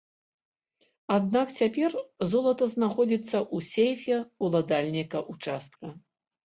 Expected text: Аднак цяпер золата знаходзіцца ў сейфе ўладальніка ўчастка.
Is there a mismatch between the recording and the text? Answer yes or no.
no